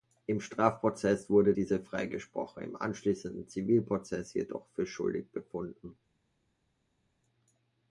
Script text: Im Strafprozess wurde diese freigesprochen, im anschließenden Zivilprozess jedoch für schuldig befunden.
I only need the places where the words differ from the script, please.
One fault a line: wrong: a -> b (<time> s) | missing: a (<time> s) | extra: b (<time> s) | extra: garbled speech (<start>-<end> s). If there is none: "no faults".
no faults